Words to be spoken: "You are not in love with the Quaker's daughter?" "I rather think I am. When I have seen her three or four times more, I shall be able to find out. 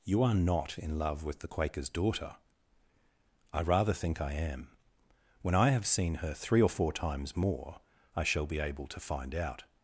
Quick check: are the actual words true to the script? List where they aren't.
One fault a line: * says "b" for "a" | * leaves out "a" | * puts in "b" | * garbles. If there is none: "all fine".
all fine